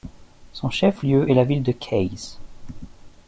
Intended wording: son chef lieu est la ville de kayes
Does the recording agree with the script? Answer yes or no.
yes